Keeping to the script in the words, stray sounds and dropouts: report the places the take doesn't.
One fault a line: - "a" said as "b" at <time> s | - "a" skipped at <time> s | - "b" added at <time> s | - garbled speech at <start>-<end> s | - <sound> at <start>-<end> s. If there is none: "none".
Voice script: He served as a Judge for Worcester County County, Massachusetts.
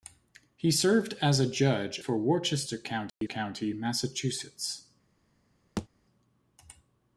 - dropout at 3.1-3.2 s
- thud at 5.8-5.9 s